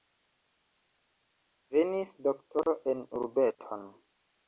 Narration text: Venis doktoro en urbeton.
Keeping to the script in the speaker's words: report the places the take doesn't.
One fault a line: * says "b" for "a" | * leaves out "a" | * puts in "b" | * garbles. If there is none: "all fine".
all fine